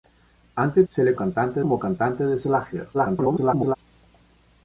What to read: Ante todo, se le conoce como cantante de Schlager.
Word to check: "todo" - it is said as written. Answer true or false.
false